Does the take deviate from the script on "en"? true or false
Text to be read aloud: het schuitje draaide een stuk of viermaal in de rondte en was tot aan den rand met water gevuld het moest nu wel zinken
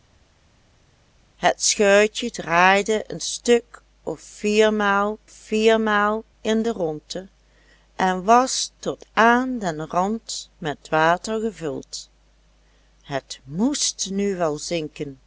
false